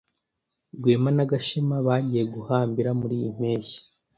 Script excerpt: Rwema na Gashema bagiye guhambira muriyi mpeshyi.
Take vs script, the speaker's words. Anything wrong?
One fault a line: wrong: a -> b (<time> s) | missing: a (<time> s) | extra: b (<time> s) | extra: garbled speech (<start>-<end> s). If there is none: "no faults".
no faults